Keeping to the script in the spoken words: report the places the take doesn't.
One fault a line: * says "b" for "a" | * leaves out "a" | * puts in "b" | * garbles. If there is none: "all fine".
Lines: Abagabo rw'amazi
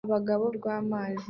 all fine